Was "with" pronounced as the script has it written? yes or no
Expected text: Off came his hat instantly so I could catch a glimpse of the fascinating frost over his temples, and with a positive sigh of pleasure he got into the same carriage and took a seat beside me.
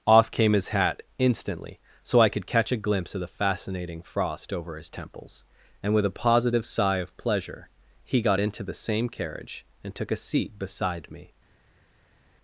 yes